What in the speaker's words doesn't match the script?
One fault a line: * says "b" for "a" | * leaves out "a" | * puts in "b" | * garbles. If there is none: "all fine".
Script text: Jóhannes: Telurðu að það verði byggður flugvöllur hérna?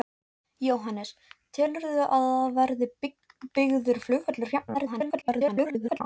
* garbles